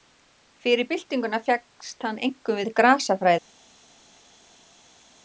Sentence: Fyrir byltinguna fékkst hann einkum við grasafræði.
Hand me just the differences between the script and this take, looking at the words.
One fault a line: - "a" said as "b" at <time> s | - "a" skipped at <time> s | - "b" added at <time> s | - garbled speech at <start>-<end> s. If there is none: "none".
none